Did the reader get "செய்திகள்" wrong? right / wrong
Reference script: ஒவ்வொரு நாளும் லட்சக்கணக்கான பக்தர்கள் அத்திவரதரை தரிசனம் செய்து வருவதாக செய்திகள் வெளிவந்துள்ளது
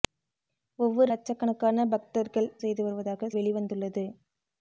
wrong